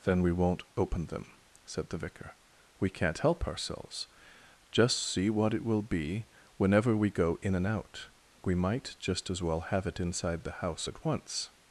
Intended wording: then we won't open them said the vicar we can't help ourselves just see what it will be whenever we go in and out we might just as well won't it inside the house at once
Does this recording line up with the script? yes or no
no